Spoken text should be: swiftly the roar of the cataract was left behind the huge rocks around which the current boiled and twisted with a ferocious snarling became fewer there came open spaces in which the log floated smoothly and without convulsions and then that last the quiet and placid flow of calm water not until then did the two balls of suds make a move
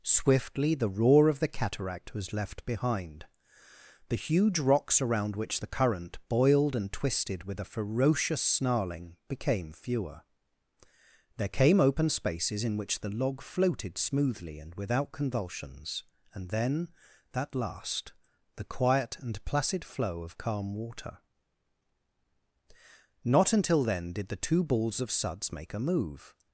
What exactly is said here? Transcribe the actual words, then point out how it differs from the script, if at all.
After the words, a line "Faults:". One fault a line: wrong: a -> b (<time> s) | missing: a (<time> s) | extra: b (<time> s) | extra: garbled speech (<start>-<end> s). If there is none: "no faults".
swiftly the roar of the cataract was left behind the huge rocks around which the current boiled and twisted with a ferocious snarling became fewer there came open spaces in which the log floated smoothly and without convulsions and then that last the quiet and placid flow of calm water not until then did the two balls of suds make a move
Faults:
no faults